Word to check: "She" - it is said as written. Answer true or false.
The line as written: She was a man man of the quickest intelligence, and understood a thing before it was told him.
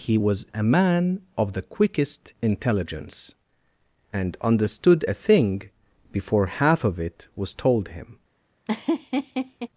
false